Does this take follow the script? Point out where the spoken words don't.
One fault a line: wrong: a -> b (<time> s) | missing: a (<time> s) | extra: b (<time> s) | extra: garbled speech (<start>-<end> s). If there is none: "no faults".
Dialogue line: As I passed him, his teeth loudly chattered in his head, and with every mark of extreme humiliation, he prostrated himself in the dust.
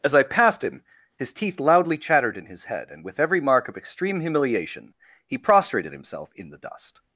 no faults